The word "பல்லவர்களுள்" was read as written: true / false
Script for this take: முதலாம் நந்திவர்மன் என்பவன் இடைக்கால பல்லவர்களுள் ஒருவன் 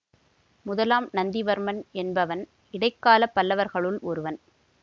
true